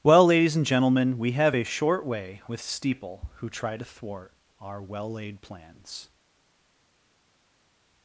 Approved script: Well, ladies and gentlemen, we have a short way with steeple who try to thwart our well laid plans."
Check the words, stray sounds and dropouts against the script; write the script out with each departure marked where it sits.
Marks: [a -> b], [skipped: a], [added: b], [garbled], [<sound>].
Well, ladies and gentlemen, we have a short way with steeple who try to thwart our well laid plans."